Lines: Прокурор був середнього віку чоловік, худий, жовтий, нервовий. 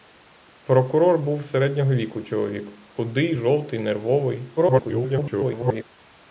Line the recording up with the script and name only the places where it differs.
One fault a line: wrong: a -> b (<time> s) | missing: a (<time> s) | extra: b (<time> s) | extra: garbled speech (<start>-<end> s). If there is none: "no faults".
extra: garbled speech (4.6-5.8 s)